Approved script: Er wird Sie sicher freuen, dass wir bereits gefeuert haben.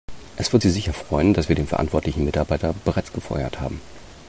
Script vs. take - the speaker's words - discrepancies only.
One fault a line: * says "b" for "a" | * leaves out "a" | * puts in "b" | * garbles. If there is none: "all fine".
* says "Es" for "Er"
* puts in "den verantwortlichen Mitarbeiter"